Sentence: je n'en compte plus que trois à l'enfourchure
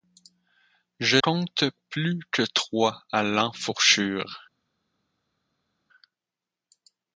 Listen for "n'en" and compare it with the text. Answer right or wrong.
wrong